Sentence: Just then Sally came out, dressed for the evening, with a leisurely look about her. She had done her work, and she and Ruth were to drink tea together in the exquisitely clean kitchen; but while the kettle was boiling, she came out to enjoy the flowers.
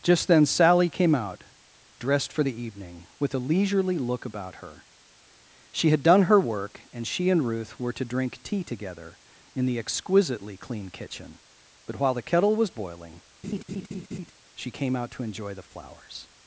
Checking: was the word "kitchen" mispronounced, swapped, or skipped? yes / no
no